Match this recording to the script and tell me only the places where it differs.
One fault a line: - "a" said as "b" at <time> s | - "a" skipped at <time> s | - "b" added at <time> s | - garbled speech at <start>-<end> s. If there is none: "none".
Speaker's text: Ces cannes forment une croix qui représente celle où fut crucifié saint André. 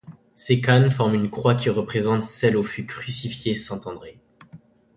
none